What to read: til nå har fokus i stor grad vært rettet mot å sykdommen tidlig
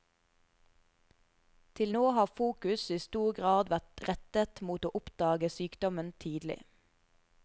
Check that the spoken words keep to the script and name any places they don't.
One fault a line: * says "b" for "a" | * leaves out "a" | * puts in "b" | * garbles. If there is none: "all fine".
* puts in "oppdage"